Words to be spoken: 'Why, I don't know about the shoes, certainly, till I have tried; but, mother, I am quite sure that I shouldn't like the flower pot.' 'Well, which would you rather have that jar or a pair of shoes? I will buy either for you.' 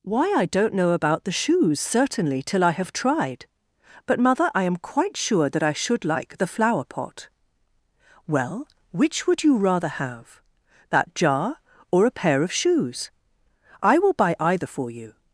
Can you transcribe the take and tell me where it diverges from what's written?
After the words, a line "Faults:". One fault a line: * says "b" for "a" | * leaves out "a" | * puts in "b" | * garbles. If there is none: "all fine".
'Why, I don't know about the shoes, certainly, till I have tried; but, mother, I am quite sure that I should like the flower pot.' 'Well, which would you rather have that jar or a pair of shoes? I will buy either for you.'
Faults:
* says "should" for "shouldn't"